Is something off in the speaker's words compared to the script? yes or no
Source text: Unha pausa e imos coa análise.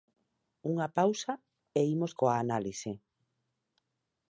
no